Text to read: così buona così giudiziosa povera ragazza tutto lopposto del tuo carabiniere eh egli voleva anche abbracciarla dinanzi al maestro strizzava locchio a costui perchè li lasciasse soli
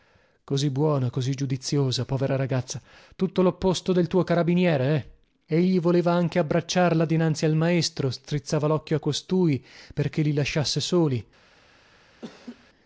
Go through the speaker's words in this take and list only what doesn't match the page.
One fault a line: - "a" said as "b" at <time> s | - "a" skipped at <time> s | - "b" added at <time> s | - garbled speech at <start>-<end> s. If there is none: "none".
none